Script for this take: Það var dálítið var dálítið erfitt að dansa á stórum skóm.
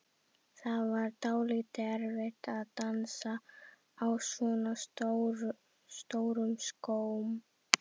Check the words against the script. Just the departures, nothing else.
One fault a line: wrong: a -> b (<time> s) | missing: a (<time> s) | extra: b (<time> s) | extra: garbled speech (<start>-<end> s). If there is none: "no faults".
missing: var dálítið (1.9 s)
extra: svona (4.3 s)